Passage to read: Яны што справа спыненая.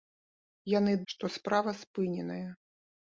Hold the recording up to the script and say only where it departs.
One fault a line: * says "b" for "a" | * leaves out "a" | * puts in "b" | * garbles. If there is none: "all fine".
all fine